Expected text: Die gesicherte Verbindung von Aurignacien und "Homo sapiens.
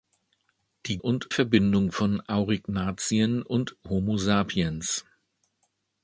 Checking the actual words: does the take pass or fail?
fail